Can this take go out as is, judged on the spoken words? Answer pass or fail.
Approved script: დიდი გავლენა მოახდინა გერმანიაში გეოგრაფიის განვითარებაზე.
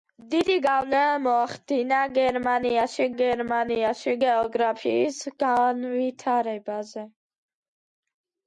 fail